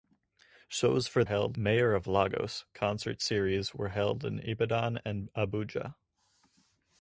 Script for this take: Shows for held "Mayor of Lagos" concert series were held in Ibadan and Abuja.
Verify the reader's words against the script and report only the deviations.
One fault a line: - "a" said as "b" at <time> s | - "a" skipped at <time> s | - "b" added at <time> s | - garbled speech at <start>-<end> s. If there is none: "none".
none